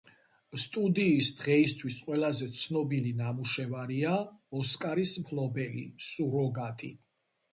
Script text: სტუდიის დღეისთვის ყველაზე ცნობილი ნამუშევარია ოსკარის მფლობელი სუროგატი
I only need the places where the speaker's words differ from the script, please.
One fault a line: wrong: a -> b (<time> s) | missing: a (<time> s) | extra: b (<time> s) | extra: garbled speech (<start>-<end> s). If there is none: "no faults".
no faults